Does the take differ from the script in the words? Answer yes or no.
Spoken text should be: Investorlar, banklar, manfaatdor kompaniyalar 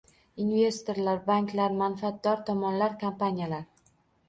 yes